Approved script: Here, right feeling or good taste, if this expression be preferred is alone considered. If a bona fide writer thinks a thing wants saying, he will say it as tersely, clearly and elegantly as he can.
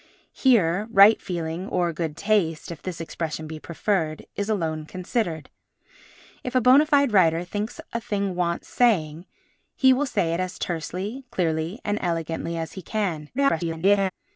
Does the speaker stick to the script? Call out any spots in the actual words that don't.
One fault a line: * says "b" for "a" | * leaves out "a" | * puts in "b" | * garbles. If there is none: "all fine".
* garbles